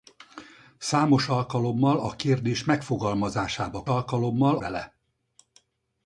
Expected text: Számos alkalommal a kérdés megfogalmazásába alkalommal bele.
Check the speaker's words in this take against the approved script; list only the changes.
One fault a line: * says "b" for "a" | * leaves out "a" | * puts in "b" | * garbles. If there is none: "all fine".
all fine